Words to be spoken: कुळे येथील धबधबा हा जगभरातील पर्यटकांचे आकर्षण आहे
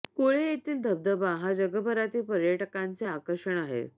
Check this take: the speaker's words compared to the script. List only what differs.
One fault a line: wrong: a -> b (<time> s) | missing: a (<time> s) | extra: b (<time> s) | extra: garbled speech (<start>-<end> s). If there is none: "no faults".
no faults